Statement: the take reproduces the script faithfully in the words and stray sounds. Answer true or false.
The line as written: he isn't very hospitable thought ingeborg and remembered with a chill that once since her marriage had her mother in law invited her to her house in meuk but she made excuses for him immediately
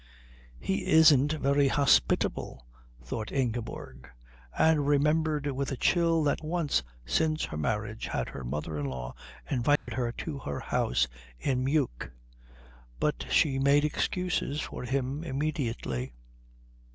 false